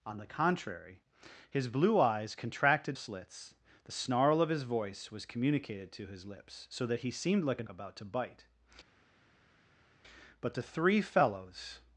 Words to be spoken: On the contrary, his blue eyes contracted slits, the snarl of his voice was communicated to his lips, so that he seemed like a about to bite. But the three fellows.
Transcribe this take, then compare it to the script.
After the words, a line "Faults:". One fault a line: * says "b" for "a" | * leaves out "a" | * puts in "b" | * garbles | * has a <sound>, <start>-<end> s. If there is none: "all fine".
On the contrary, his blue eyes contracted slits, the snarl of his voice was communicated to his lips, so that he seemed like a about to bite. But the three fellows.
Faults:
all fine